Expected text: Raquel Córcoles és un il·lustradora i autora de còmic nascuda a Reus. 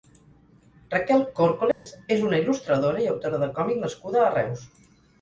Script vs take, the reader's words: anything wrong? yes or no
yes